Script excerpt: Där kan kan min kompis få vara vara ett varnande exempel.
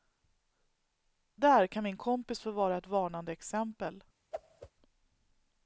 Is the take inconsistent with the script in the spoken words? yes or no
yes